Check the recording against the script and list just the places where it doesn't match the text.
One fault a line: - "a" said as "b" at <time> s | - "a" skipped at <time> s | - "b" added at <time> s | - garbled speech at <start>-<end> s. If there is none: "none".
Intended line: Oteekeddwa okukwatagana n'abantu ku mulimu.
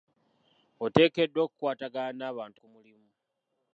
none